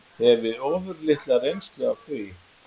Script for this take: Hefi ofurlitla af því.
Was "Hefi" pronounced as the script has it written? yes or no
yes